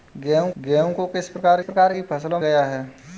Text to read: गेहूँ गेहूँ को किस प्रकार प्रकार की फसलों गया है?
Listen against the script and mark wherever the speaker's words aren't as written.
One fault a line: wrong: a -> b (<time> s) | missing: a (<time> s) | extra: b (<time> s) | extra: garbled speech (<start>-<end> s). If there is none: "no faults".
no faults